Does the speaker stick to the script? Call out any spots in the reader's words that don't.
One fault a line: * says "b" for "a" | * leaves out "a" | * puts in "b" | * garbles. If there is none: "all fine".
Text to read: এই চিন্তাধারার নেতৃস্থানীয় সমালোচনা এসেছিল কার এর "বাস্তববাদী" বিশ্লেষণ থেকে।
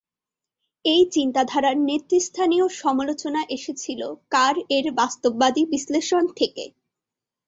all fine